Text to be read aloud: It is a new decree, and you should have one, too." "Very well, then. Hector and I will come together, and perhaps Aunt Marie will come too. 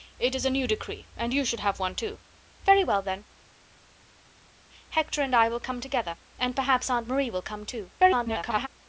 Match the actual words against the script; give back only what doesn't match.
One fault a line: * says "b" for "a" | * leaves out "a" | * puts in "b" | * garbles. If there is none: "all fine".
* garbles